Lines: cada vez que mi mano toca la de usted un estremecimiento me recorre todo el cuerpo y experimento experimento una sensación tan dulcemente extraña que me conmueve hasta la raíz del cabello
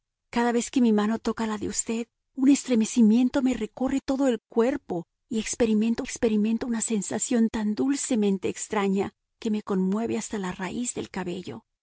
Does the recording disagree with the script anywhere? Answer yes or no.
no